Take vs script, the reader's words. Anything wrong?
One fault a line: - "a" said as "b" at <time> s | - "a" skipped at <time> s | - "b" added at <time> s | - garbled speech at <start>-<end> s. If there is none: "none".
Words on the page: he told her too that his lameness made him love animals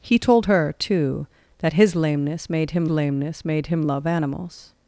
- "lameness made him" added at 2.9 s